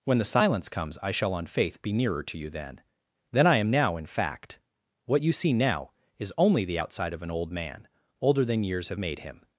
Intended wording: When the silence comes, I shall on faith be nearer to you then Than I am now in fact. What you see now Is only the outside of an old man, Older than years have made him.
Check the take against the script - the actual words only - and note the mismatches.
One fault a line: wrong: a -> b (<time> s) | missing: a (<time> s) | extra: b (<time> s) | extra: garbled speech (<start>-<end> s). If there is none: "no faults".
no faults